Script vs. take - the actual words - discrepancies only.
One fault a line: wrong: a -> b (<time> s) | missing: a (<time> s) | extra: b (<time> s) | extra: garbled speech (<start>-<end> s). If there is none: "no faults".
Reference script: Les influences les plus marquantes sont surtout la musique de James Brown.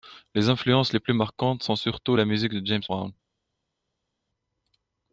no faults